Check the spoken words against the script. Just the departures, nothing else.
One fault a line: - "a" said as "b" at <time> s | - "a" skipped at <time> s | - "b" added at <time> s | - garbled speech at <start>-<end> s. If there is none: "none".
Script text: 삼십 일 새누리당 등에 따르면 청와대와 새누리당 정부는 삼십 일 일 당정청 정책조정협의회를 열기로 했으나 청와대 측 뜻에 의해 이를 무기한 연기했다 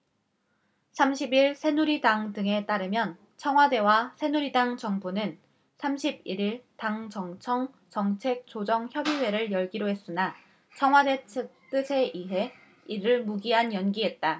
none